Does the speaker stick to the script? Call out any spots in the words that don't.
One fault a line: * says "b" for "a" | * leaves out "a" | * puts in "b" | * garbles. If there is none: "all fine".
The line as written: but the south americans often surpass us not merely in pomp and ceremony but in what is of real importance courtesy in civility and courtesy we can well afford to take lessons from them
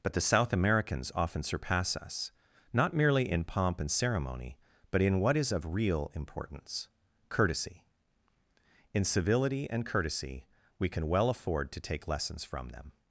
all fine